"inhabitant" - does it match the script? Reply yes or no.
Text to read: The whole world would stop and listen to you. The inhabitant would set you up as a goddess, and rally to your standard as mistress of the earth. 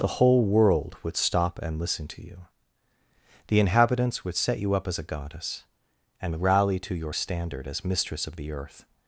no